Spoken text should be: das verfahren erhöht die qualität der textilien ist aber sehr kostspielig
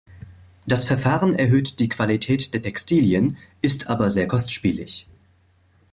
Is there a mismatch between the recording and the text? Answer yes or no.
no